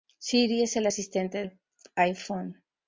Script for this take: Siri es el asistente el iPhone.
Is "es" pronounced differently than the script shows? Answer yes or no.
no